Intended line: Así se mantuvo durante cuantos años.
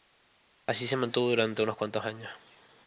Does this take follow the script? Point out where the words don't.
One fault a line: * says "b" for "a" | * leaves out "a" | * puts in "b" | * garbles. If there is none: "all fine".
* puts in "unos"